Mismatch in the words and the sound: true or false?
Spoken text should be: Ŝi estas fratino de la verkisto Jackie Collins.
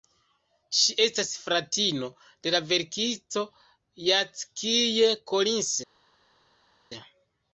false